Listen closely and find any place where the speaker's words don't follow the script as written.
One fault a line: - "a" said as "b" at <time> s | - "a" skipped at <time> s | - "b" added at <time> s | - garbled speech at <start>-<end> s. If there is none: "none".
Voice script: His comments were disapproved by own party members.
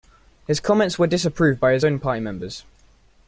- "his" added at 1.7 s